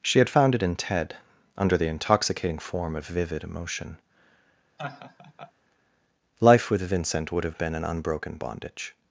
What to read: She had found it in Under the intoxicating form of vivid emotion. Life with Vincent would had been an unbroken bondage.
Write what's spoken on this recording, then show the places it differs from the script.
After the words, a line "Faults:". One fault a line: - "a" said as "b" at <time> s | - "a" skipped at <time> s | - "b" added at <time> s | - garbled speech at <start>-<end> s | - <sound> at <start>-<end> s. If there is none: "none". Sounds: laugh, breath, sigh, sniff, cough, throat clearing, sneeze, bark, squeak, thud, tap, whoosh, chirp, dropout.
She had found it in Ted under the intoxicating form of vivid emotion. Life with Vincent would have been an unbroken bondage.
Faults:
- "Ted" added at 0.8 s
- laugh at 4.8-5.5 s
- "had" said as "have" at 7.4 s